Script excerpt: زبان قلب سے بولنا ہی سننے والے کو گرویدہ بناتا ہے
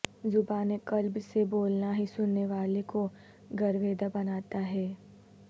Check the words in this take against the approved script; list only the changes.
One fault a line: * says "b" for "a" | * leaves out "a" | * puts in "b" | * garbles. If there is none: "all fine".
all fine